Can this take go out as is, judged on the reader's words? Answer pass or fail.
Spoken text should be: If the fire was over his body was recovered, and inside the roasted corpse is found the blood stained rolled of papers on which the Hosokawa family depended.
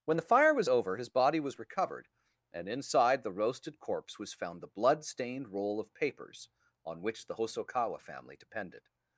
fail